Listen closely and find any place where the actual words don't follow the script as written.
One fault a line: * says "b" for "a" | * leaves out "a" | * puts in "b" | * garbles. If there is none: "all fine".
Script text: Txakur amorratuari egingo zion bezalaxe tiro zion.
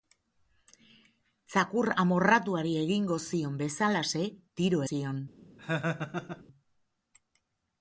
all fine